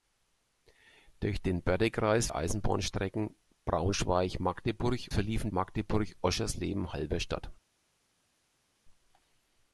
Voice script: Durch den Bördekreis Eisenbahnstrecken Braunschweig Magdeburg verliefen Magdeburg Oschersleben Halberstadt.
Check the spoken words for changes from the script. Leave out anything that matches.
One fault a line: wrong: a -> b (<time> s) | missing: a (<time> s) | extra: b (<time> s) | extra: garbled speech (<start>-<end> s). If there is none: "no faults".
no faults